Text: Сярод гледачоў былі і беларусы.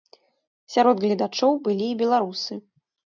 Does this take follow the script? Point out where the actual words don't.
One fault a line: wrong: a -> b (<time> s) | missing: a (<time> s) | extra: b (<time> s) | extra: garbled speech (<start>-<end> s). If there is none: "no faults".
no faults